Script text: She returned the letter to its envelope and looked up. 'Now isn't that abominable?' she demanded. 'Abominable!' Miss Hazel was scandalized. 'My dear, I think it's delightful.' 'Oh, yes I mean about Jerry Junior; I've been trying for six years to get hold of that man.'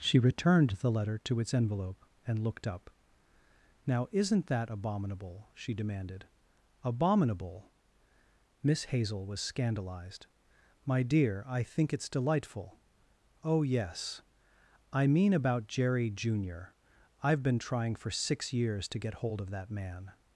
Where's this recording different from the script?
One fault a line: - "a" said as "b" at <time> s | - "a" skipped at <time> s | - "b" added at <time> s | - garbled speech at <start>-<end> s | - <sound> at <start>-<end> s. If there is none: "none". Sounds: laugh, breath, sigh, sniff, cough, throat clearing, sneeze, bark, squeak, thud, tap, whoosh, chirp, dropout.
none